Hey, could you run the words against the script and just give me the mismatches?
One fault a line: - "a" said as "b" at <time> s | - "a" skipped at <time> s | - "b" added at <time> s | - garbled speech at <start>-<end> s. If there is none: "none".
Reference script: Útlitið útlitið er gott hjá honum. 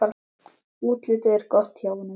- "útlitið" skipped at 1.4 s